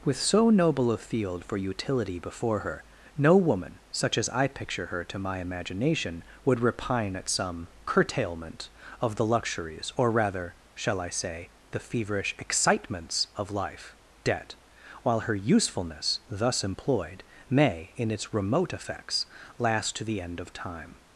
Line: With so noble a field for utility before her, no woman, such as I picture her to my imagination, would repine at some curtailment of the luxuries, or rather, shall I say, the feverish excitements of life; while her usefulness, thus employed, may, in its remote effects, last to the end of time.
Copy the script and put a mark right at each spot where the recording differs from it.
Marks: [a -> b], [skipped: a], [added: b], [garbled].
With so noble a field for utility before her, no woman, such as I picture her to my imagination, would repine at some curtailment of the luxuries, or rather, shall I say, the feverish excitements of life; [added: debt] while her usefulness, thus employed, may, in its remote effects, last to the end of time.